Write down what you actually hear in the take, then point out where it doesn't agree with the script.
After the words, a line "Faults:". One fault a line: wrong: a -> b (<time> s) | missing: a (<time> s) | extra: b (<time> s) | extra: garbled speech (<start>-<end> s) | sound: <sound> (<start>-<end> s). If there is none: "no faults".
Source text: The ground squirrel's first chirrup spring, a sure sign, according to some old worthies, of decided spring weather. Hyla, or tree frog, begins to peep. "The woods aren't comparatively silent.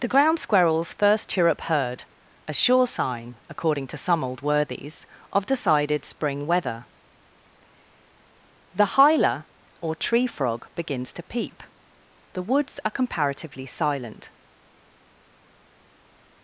The ground squirrel's first chirrup heard, a sure sign, according to some old worthies, of decided spring weather. The hyla, or tree frog, begins to peep. "The woods are comparatively silent.
Faults:
wrong: spring -> heard (1.6 s)
extra: The (8.7 s)
wrong: aren't -> are (12.9 s)